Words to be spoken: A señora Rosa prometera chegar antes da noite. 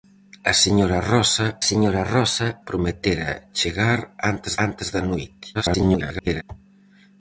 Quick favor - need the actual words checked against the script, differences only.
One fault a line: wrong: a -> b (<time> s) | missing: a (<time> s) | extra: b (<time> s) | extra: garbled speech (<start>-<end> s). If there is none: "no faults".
extra: señora Rosa (1.7 s)
extra: antes (4.6 s)
extra: garbled speech (5.5-6.4 s)